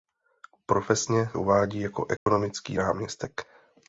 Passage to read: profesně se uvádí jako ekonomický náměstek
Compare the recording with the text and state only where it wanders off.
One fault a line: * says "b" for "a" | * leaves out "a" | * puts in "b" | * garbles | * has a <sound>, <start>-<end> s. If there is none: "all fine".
* leaves out "se"
* has a dropout, 2.2-2.3 s